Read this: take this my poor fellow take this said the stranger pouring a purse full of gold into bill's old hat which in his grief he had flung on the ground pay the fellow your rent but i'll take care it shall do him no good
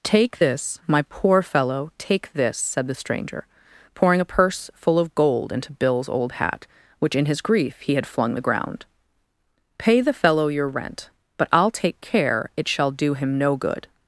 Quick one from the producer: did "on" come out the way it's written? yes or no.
no